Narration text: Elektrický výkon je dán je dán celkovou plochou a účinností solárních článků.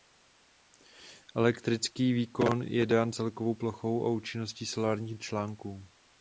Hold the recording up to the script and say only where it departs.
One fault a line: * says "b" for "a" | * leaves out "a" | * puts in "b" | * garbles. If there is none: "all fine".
* leaves out "je dán"